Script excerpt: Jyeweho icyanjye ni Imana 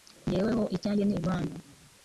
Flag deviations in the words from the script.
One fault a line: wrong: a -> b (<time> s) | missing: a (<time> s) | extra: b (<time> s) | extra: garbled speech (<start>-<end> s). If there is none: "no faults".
no faults